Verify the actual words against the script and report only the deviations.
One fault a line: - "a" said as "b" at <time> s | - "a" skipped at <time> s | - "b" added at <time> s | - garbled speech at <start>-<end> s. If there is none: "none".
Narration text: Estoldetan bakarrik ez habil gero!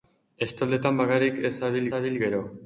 - "habil" added at 2.0 s